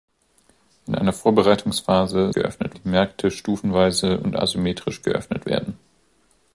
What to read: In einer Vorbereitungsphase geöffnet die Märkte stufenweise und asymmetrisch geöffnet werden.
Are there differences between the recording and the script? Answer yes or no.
no